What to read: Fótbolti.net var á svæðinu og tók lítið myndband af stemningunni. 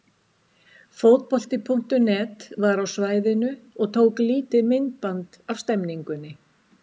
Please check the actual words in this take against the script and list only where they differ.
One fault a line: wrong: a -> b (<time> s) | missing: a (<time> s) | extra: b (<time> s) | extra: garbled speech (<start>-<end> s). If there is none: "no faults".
no faults